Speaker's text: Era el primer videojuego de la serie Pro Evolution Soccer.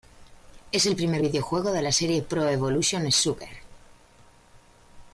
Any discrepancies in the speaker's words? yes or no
yes